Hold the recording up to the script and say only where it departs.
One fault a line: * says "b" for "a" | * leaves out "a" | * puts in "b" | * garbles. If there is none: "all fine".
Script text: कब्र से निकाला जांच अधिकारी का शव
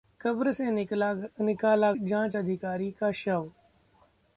all fine